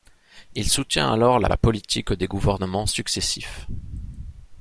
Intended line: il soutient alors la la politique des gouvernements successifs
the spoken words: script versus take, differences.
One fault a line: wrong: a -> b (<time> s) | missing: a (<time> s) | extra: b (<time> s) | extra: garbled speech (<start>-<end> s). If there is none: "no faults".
no faults